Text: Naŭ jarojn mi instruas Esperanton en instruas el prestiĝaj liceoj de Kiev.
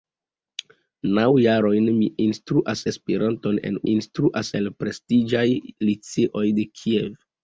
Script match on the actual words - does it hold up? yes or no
yes